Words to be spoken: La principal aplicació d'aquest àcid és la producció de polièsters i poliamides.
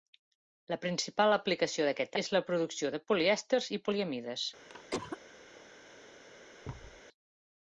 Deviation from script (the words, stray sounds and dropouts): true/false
true